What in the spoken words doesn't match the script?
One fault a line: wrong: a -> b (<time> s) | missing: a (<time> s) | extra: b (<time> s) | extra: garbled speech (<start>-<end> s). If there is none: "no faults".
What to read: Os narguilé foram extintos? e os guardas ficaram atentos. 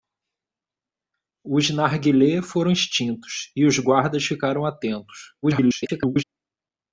extra: garbled speech (5.4-6.2 s)